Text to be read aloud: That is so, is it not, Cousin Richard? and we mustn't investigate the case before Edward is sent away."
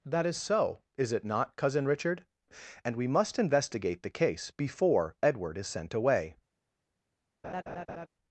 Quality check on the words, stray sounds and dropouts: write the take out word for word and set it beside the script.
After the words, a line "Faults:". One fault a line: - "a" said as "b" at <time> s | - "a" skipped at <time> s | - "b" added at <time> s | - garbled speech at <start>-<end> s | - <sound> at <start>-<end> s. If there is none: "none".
That is so, is it not, Cousin Richard? and we must investigate the case before Edward is sent away."
Faults:
- "mustn't" said as "must" at 3.1 s
- laugh at 7.4-8.1 s